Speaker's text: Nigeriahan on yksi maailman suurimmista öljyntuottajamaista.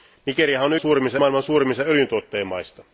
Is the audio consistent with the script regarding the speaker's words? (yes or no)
no